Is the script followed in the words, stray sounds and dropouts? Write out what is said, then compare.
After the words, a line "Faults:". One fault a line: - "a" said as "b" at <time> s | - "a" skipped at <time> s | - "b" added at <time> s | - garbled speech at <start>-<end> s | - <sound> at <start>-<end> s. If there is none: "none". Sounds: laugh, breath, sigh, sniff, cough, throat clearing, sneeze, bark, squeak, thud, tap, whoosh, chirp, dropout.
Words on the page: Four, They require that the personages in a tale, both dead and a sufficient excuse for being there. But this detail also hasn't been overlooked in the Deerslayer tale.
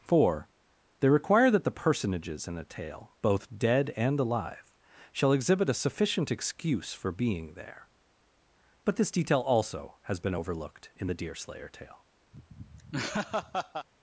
Four, They require that the personages in a tale, both dead and alive, shall exhibit a sufficient excuse for being there. But this detail also has been overlooked in the Deerslayer tale.
Faults:
- "alive shall exhibit" added at 4.2 s
- "hasn't" said as "has" at 10.0 s
- laugh at 12.3-13.9 s